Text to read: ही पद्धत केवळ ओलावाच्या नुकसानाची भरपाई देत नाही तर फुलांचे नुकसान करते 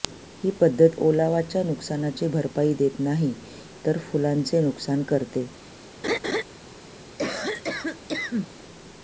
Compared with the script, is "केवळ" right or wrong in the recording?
wrong